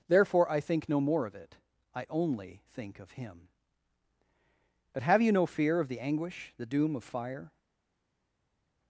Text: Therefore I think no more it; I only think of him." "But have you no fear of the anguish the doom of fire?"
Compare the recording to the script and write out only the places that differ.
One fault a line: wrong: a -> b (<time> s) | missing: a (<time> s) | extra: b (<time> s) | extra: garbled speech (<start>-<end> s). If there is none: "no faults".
extra: of (1.2 s)